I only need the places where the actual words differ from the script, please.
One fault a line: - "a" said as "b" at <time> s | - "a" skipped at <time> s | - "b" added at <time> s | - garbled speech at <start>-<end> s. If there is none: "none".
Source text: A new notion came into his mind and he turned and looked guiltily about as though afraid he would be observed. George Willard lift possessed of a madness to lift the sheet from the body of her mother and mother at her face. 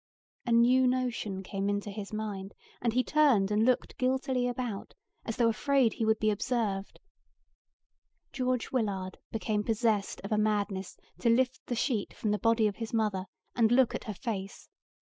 - "lift" said as "became" at 9.3 s
- "her" said as "his" at 12.8 s
- "mother" said as "look" at 13.7 s